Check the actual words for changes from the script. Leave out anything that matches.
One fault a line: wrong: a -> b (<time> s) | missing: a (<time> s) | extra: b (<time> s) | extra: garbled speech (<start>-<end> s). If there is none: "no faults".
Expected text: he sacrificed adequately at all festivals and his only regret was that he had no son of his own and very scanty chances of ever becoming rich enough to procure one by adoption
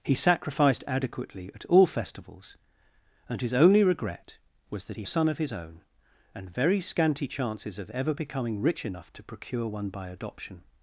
missing: had no (5.0 s)